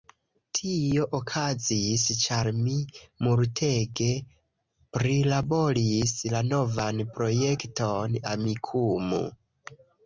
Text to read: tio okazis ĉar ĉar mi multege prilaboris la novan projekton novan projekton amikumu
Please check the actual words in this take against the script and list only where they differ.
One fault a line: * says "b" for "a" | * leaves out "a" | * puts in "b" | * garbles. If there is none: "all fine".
* leaves out "ĉar"
* leaves out "novan projekton"